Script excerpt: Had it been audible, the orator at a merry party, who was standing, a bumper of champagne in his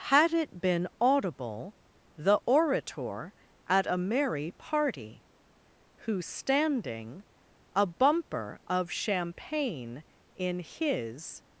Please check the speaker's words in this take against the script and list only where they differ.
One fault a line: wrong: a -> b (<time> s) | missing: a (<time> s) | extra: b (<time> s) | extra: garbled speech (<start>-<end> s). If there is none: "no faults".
missing: was (6.2 s)